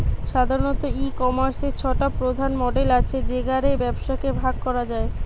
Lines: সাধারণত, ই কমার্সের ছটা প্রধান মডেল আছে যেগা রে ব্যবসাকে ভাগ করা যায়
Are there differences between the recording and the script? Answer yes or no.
no